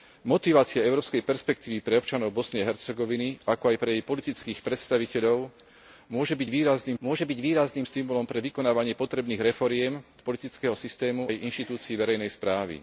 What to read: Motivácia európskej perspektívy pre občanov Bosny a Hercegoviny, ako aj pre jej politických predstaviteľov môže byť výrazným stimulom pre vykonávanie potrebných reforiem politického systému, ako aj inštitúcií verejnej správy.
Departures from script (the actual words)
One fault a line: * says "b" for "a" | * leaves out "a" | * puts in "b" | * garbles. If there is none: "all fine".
* puts in "môže byť výrazným"
* leaves out "ako"